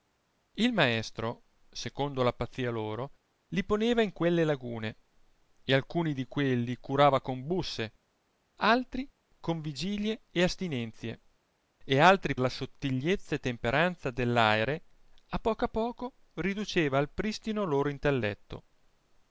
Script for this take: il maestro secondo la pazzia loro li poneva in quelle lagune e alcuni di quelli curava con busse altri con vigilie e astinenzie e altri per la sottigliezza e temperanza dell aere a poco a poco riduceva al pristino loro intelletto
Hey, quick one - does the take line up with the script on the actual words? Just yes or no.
no